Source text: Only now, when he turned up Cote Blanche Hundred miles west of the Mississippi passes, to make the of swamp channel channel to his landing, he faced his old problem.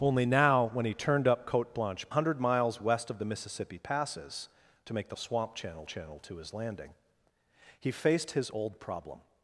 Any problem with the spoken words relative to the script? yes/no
no